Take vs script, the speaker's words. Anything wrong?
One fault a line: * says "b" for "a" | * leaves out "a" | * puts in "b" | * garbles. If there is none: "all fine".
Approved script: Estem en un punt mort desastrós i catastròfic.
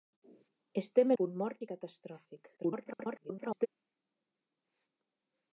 * leaves out "en un"
* leaves out "desastrós"
* garbles